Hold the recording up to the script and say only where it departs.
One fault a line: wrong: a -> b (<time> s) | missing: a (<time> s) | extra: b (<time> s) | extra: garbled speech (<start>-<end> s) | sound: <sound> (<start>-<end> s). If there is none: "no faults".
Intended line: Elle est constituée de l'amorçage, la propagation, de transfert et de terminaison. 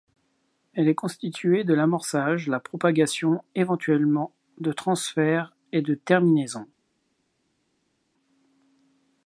extra: éventuellement (3.5 s)